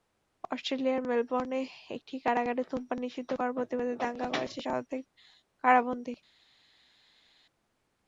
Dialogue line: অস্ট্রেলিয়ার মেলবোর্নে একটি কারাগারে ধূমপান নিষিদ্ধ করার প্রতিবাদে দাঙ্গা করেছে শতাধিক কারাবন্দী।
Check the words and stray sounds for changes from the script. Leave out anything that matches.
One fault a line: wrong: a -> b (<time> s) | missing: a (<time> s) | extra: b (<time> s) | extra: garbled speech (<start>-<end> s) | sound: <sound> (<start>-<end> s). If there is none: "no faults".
no faults